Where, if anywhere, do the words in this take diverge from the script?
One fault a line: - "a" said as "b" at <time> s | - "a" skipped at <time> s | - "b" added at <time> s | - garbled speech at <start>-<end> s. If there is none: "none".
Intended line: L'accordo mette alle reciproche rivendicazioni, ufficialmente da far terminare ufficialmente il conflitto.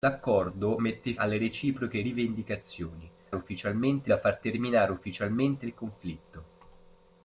none